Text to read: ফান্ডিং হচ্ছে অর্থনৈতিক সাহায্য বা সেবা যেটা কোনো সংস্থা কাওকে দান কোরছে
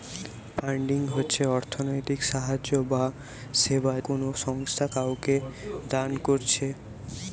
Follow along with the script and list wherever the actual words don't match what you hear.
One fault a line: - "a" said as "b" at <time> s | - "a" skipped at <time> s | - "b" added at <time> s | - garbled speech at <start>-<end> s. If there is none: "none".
- "যেটা" skipped at 3.9 s